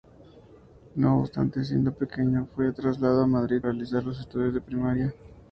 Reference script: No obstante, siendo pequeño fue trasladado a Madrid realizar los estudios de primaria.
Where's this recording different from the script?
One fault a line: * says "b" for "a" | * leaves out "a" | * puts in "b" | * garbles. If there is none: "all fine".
all fine